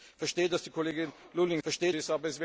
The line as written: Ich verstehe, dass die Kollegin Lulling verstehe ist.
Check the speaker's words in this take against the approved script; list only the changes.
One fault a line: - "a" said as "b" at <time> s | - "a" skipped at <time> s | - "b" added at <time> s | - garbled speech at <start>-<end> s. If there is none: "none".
none